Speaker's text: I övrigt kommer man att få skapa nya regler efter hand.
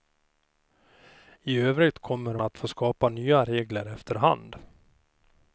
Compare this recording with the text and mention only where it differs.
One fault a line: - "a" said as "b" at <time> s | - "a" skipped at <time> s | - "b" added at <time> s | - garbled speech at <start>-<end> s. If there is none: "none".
- "man" skipped at 2.4 s